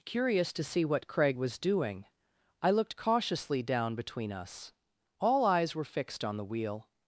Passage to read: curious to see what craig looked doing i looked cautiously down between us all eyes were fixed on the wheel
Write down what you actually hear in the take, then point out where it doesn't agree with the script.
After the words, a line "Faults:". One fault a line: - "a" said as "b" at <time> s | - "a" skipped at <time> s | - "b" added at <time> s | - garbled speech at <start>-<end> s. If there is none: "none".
curious to see what craig was doing i looked cautiously down between us all eyes were fixed on the wheel
Faults:
- "looked" said as "was" at 1.4 s